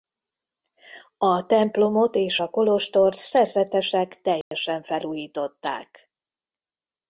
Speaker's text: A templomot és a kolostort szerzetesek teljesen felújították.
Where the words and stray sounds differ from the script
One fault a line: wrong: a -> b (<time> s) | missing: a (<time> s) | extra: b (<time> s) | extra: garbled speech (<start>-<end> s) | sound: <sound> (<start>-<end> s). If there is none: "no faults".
sound: dropout (4.4-4.5 s)